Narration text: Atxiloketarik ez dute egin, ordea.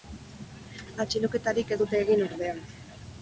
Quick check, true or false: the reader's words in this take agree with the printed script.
true